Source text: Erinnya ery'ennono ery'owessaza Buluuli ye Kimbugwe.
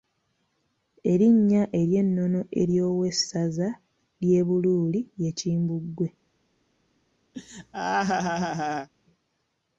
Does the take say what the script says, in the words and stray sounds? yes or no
no